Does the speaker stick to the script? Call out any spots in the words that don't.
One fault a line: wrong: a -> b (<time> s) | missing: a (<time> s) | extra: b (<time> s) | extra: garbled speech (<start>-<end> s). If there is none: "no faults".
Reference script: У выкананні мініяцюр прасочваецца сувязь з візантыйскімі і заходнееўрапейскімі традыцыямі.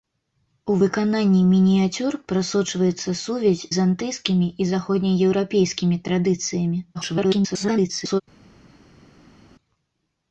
missing: з (3.6 s)
extra: garbled speech (6.9-8.2 s)